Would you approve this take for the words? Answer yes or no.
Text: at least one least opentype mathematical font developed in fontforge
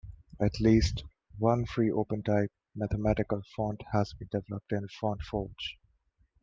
no